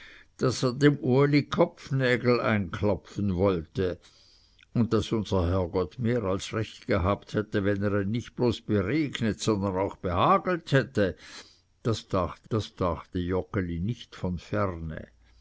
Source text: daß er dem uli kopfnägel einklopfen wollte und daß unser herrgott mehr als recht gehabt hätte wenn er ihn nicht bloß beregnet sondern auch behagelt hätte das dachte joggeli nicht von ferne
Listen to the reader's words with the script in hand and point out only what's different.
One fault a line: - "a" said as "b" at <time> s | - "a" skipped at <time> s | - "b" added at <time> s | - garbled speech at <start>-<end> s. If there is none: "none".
- "das dachte" added at 12.5 s